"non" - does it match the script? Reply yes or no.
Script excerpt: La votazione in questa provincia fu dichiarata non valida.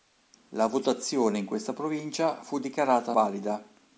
no